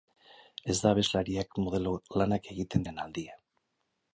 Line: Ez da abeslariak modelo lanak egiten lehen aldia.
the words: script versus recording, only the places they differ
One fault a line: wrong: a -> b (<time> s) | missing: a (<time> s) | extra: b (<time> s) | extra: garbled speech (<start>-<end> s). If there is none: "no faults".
no faults